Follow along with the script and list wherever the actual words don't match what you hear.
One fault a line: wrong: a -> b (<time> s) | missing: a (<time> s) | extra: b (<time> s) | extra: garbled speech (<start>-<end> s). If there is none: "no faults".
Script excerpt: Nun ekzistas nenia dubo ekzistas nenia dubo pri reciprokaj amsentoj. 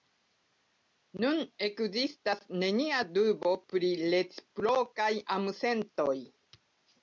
missing: ekzistas nenia dubo (3.5 s)